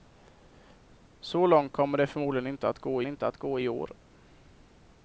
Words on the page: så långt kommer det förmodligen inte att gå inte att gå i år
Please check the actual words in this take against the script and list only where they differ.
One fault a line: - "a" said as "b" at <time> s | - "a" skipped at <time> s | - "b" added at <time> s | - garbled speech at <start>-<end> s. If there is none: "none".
none